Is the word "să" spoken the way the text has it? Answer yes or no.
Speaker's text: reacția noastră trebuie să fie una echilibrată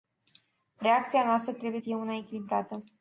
no